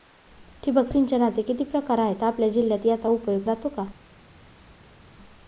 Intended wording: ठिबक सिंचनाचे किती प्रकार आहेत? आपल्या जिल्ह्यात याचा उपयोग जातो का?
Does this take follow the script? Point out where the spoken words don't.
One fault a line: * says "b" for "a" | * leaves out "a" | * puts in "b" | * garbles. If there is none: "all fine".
all fine